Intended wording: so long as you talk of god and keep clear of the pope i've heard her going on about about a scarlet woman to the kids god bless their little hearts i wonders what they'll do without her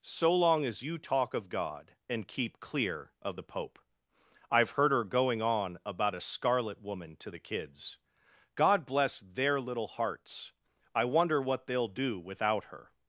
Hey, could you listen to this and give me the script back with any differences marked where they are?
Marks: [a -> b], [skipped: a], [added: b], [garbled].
so long as you talk of god and keep clear of the pope i've heard her going on about [skipped: about] a scarlet woman to the kids god bless their little hearts i [wonders -> wonder] what they'll do without her